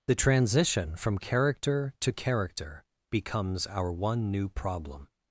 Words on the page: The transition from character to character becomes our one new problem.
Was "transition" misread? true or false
false